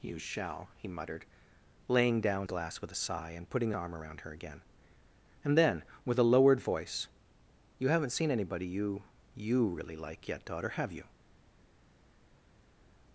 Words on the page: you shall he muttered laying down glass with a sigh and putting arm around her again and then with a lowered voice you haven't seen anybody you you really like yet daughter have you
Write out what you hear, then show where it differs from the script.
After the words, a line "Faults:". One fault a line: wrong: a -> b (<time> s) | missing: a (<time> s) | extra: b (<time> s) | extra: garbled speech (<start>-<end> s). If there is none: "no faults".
you shall he muttered laying down glass with a sigh and putting arm around her again and then with a lowered voice you haven't seen anybody you you really like yet daughter have you
Faults:
no faults